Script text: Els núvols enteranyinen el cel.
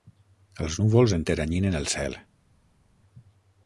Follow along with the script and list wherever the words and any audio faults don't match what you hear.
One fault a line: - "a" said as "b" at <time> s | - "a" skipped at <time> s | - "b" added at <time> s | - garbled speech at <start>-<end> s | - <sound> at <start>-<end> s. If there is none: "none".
none